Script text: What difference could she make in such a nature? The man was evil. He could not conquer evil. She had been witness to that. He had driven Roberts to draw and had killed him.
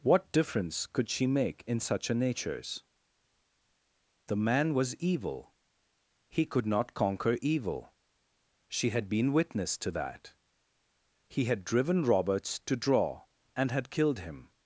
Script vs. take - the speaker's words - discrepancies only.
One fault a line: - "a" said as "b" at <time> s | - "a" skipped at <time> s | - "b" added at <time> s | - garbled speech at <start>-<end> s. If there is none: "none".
- "nature" said as "natures" at 2.1 s